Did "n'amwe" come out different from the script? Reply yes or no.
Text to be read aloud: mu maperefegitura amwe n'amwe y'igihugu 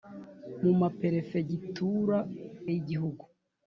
yes